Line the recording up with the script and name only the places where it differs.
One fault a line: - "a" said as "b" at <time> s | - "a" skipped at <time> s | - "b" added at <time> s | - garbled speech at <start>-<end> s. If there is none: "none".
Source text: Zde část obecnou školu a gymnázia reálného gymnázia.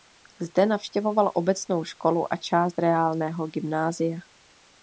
- "část" said as "navštěvoval" at 0.7 s
- "gymnázia" said as "část" at 2.4 s